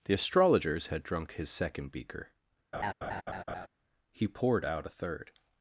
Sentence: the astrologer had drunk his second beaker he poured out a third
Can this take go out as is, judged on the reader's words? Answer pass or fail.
fail